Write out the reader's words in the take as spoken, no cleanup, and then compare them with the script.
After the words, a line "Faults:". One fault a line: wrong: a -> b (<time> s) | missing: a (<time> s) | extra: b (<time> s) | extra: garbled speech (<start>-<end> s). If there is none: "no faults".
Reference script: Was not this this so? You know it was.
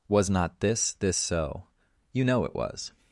Was not this this so? You know it was.
Faults:
no faults